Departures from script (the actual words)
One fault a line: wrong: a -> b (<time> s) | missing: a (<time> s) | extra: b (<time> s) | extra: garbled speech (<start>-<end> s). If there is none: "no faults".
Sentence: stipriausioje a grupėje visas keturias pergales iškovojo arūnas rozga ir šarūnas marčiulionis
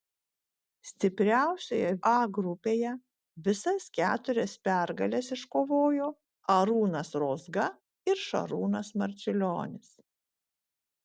no faults